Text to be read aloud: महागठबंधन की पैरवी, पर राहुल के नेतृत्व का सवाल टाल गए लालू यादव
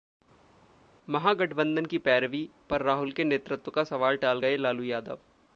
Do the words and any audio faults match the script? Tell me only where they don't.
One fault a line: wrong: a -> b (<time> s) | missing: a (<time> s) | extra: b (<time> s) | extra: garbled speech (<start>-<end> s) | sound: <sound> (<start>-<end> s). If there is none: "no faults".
no faults